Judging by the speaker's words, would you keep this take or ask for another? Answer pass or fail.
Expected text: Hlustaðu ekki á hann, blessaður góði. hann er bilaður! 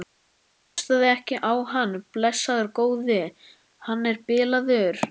pass